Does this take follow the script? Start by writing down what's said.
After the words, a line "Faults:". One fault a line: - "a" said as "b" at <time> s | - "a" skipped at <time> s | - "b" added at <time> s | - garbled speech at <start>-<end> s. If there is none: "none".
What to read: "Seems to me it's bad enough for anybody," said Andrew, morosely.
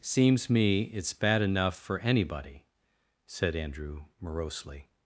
"Seems me it's bad enough for anybody," said Andrew, morosely.
Faults:
- "to" skipped at 0.5 s